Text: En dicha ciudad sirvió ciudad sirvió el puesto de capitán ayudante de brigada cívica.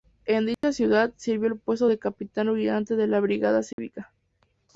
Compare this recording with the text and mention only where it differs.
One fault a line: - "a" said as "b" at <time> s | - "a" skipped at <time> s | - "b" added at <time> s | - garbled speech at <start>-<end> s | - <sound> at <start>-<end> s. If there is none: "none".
- dropout at 0.5-0.6 s
- "ciudad sirvió" skipped at 1.5 s
- "la" added at 3.1 s
- dropout at 3.7-3.8 s